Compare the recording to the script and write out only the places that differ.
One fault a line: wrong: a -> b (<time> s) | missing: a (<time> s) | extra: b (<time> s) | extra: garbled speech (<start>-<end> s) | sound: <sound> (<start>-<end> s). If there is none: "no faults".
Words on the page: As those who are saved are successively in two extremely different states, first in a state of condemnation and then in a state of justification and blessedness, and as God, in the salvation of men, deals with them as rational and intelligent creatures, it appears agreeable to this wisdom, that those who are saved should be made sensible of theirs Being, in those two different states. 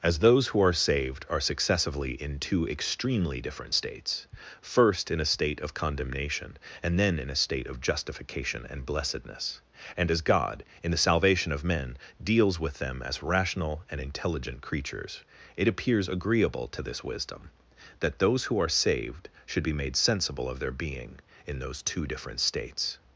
wrong: theirs -> their (20.6 s)